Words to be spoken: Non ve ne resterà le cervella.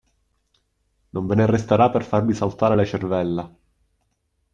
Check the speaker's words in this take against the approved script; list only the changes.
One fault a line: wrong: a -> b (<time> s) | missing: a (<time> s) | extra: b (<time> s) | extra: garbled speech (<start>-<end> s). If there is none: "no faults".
extra: per farvi saltare (1.9 s)